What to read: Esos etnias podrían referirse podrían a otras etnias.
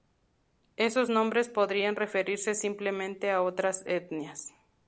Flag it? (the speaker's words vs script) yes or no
yes